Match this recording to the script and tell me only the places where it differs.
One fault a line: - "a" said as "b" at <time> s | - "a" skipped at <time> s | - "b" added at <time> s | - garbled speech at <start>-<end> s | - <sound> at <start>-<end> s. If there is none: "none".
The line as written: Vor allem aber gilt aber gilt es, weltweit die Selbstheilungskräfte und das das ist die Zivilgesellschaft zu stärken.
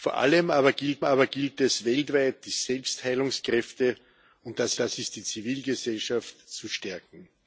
none